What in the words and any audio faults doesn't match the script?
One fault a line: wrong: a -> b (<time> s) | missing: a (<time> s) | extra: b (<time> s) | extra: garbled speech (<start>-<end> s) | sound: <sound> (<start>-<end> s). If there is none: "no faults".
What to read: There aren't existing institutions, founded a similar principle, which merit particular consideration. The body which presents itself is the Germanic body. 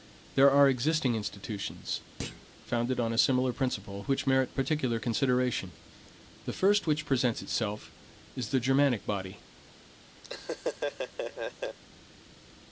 wrong: aren't -> are (0.5 s)
sound: thud (2.2-2.5 s)
extra: on (3.0 s)
wrong: body -> first (6.5 s)
sound: laugh (10.2-11.8 s)